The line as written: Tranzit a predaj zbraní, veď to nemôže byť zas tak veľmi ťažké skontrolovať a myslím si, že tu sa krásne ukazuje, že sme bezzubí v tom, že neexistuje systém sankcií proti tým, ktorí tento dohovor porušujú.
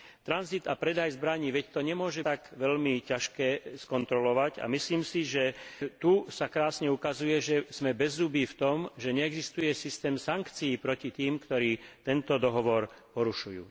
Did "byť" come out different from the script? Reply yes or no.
yes